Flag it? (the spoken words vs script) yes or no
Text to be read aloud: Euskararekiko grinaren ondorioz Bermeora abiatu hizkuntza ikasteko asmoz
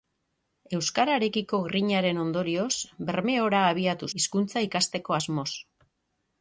no